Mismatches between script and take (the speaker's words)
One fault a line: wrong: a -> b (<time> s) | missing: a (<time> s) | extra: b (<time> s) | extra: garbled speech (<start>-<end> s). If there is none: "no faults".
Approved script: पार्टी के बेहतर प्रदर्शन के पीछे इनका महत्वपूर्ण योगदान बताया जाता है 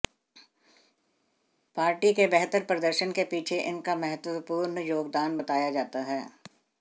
no faults